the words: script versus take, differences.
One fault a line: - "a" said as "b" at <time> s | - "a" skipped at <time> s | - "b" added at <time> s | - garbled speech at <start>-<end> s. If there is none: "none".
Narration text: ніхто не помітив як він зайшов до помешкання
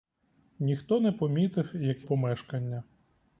- "він зайшов до" skipped at 2.1 s